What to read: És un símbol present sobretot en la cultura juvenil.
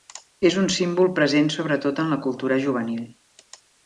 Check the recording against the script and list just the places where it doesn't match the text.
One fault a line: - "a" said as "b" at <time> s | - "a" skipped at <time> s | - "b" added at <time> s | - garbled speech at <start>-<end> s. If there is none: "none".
none